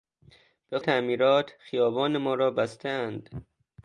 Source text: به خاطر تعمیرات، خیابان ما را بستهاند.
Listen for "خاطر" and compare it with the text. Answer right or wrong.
wrong